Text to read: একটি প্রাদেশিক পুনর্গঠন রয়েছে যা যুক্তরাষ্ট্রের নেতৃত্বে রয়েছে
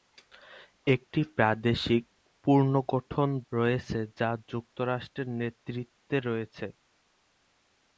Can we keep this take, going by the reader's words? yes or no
yes